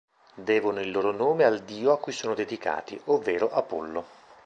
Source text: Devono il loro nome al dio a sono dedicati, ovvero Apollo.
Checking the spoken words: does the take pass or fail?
fail